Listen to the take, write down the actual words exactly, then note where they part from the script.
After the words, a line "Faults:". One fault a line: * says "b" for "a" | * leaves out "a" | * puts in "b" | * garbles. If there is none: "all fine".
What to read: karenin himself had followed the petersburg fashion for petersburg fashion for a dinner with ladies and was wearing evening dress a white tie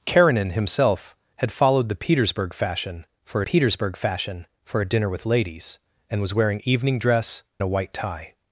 karenin himself had followed the petersburg fashion for petersburg fashion for a dinner with ladies and was wearing evening dress a white tie
Faults:
all fine